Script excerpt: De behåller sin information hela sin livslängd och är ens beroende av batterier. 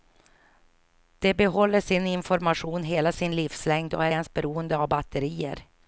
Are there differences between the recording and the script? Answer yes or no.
no